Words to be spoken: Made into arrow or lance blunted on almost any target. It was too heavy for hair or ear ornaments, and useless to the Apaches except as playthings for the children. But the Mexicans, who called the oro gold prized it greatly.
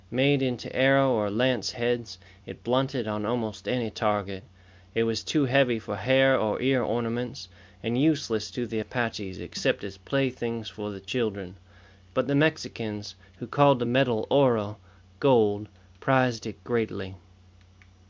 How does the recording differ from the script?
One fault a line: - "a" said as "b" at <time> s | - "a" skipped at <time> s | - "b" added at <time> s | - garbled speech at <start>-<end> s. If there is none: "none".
- "heads it" added at 1.7 s
- "metal" added at 13.8 s